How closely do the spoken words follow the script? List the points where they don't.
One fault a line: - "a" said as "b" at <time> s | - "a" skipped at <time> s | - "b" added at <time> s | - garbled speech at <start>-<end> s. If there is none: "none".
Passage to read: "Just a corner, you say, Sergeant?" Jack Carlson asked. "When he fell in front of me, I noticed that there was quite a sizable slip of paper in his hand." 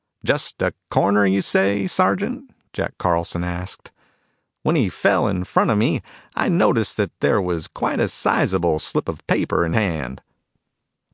- "his" skipped at 9.7 s